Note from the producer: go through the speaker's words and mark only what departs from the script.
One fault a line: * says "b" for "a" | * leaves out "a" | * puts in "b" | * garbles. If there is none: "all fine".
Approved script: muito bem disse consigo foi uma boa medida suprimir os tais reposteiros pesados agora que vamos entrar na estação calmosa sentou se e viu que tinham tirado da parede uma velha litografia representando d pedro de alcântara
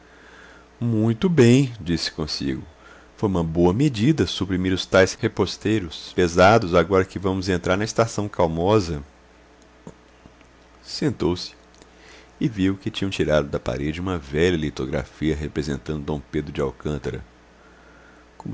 all fine